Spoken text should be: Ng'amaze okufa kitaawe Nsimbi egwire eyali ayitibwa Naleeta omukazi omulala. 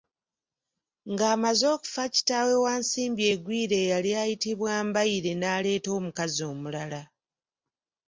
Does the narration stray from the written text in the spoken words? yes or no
yes